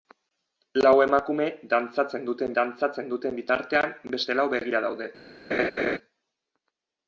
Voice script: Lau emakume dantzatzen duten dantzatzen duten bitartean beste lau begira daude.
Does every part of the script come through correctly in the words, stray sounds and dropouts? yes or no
no